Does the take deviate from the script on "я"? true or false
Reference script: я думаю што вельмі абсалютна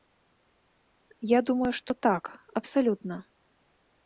false